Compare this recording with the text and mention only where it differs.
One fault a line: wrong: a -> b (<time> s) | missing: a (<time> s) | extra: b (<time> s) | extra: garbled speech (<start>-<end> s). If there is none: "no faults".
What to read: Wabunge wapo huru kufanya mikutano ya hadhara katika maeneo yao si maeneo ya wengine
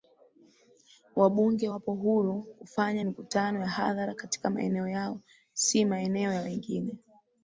no faults